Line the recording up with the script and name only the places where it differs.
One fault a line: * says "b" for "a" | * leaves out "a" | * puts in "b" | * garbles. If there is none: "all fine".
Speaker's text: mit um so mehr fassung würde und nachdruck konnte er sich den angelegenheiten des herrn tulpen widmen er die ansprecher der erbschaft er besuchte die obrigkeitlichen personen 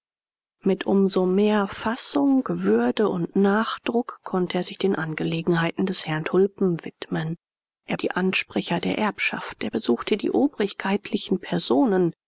all fine